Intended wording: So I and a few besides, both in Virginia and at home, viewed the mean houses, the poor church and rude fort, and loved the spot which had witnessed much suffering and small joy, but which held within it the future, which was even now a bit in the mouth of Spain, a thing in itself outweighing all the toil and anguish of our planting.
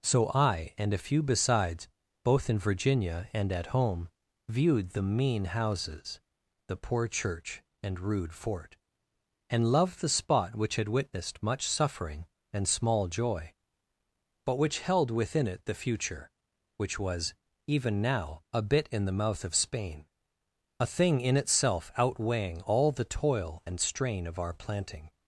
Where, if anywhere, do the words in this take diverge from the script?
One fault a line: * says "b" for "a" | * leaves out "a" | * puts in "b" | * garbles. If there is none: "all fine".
* says "strain" for "anguish"